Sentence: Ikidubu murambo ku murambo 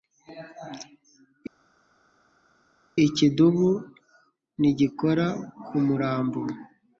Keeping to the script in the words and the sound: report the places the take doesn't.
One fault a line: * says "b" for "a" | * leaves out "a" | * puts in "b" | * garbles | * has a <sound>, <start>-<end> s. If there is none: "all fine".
* says "ntigikora" for "murambo"